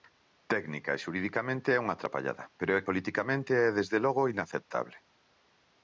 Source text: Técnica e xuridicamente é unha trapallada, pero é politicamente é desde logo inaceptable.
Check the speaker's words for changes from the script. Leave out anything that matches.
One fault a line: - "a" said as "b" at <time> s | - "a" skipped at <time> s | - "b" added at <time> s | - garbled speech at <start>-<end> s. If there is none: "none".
none